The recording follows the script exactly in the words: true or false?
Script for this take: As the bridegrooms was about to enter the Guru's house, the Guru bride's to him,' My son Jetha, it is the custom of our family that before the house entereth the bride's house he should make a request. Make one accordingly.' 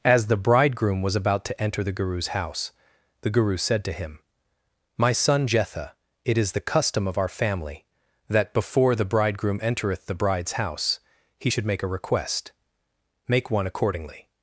false